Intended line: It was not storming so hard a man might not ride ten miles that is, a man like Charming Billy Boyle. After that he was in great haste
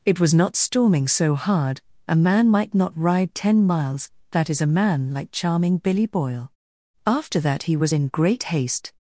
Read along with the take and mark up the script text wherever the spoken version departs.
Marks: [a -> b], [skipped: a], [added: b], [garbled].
It was not storming so hard a man might not ride ten miles that is, a man like Charming Billy Boyle. After that he was in great haste